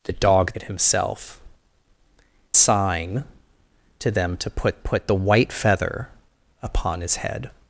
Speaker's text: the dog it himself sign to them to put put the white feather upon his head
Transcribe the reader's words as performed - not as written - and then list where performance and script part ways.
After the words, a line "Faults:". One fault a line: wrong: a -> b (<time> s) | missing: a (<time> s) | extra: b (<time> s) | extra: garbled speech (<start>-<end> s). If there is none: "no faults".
the dog it himself sign to them to put put the white feather upon his head
Faults:
no faults